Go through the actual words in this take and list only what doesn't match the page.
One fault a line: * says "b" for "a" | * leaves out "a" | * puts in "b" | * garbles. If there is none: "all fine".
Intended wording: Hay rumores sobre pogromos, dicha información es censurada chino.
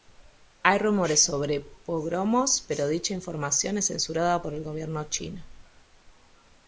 * puts in "pero"
* puts in "por el gobierno"